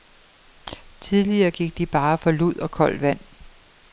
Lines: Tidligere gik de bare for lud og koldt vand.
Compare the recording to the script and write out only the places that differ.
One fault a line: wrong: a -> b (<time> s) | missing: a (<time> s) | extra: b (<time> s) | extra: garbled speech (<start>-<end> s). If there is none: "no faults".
no faults